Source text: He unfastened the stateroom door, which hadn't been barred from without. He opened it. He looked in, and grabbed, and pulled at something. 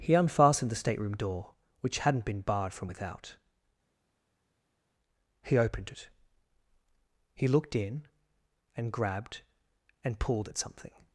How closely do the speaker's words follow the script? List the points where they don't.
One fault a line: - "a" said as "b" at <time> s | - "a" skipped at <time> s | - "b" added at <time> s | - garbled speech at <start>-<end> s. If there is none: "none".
none